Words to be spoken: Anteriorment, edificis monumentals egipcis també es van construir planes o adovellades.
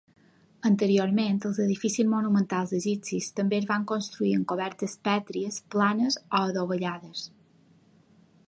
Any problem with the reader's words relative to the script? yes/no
yes